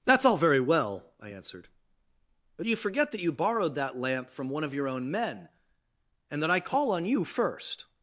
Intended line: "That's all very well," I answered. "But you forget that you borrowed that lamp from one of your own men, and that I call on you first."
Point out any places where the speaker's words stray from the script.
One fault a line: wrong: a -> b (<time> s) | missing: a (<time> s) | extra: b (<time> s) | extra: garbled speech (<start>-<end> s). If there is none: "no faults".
no faults